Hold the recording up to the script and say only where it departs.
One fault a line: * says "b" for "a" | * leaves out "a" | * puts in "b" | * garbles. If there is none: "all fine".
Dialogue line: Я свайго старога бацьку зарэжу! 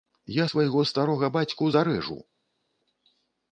all fine